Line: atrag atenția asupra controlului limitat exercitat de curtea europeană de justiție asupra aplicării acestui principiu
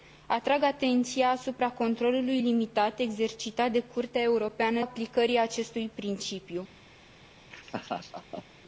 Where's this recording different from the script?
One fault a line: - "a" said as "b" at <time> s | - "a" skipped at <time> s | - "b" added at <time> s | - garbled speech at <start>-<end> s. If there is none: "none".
- "de justiție asupra" skipped at 4.8 s